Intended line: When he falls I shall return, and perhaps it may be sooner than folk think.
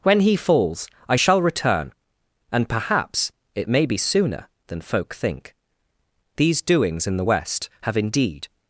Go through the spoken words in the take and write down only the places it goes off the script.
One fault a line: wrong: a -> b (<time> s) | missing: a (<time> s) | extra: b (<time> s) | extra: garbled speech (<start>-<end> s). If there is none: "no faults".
extra: These doings in the West have indeed (6.4 s)